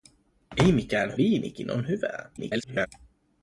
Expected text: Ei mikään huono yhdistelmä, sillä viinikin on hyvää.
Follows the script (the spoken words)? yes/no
no